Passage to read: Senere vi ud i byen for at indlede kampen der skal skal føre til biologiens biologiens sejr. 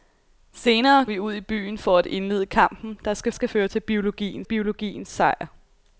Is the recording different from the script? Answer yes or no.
no